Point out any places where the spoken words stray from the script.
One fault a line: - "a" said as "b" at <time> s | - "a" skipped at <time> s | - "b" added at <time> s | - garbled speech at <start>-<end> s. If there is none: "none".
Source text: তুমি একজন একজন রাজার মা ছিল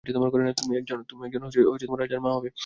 - "একজন" skipped at 1.0 s
- "ছিল" said as "হবে" at 2.4 s